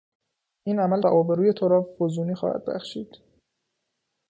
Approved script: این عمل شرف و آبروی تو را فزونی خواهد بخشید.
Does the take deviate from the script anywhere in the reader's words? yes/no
yes